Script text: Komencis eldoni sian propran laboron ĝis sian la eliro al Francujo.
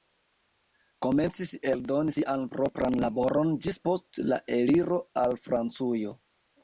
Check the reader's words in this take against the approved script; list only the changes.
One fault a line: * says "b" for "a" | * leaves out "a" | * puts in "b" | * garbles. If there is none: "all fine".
* says "post" for "sian"